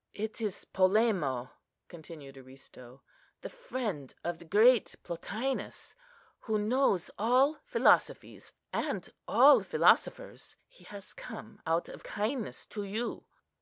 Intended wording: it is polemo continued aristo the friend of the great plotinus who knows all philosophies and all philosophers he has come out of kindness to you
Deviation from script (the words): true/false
false